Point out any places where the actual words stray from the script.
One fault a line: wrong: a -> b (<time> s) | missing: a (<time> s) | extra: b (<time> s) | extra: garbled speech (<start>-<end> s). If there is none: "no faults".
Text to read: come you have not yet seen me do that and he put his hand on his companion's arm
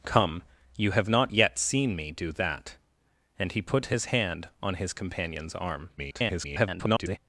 extra: garbled speech (6.0-7.2 s)